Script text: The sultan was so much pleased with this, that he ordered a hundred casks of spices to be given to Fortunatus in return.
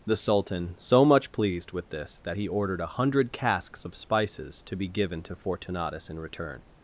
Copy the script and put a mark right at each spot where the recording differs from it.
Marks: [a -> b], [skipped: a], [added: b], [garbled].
The sultan [skipped: was] so much pleased with this, that he ordered a hundred casks of spices to be given to Fortunatus in return.